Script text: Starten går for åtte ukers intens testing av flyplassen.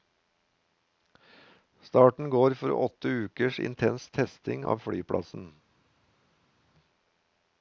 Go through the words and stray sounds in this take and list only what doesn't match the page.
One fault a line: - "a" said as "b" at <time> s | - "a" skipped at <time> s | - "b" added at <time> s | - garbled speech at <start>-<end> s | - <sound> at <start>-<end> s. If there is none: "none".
none